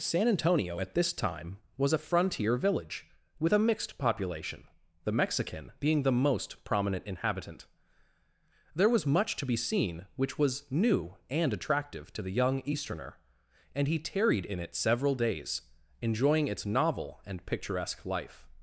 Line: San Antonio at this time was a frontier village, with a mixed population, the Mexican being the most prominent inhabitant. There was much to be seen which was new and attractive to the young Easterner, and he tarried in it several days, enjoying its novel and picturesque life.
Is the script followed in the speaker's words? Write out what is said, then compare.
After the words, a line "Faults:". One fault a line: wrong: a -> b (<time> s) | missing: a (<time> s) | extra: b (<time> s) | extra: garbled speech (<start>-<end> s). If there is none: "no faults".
San Antonio at this time was a frontier village, with a mixed population, the Mexican being the most prominent inhabitant. There was much to be seen which was new and attractive to the young Easterner, and he tarried in it several days, enjoying its novel and picturesque life.
Faults:
no faults